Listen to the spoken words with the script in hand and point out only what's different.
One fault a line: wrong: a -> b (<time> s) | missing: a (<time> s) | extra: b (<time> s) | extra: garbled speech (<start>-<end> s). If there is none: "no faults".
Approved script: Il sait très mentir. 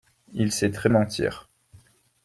no faults